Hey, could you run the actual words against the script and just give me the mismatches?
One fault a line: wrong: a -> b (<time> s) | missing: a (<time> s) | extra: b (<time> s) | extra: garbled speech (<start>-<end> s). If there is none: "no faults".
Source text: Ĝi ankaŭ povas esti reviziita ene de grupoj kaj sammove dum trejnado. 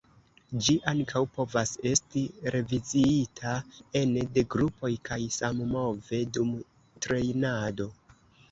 no faults